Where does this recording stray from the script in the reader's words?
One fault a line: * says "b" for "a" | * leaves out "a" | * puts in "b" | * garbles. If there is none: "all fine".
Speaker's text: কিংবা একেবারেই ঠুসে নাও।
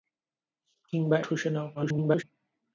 * leaves out "একেবারেই"
* garbles